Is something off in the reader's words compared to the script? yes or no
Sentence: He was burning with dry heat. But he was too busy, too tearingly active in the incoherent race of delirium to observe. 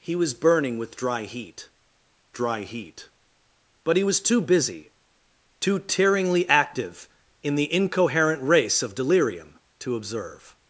yes